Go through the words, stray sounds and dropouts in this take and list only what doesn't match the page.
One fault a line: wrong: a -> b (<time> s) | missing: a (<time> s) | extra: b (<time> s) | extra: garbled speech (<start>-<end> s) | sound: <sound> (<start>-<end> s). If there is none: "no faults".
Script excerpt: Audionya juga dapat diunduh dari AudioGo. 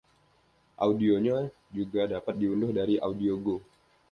no faults